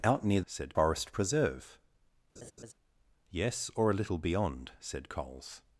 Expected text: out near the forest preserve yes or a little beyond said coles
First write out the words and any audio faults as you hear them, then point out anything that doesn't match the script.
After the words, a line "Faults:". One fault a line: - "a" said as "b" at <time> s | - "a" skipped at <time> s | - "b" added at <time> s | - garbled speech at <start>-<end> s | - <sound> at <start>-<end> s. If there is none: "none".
out near said forest preserve yes or a little beyond said coles
Faults:
- "the" said as "said" at 0.4 s
- laugh at 2.4-2.7 s